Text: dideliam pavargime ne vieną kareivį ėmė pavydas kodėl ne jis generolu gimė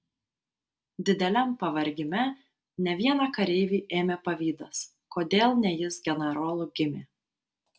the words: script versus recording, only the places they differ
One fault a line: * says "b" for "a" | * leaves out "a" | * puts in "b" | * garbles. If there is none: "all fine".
all fine